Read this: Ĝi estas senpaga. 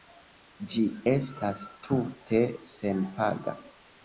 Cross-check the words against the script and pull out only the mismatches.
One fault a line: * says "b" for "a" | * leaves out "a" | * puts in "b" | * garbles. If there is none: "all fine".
* puts in "tute"